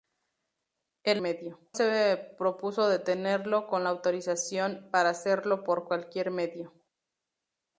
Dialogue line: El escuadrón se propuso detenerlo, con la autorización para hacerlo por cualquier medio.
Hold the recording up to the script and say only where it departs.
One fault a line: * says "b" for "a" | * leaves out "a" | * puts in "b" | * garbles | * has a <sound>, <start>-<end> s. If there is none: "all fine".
* says "medio" for "escuadrón"